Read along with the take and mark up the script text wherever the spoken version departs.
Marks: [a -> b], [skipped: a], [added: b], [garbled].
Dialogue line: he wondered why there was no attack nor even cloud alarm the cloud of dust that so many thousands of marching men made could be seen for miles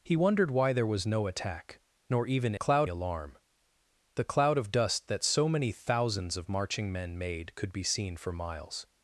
he wondered why there was no attack nor even cloud alarm the cloud of dust that so many thousands of marching men made could be seen for miles